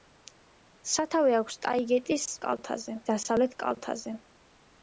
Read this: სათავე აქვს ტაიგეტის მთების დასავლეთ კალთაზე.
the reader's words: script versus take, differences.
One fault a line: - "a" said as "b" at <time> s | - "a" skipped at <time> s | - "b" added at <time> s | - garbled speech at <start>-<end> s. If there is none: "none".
- "მთების" said as "კალთაზე" at 2.5 s